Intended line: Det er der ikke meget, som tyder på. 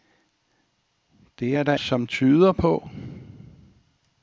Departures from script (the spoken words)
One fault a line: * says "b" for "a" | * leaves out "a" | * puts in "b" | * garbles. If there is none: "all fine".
* leaves out "ikke meget"